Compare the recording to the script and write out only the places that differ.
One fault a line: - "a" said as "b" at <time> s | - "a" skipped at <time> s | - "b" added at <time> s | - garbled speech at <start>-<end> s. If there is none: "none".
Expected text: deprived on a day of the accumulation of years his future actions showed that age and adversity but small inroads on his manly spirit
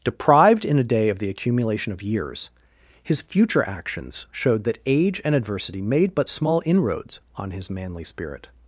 - "on" said as "in" at 0.7 s
- "made" added at 5.8 s